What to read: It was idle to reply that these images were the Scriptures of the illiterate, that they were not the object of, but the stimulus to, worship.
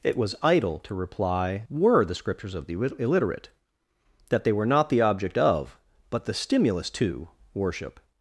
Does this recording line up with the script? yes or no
no